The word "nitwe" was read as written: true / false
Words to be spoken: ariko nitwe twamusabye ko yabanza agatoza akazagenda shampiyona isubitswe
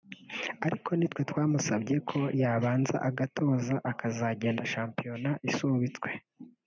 true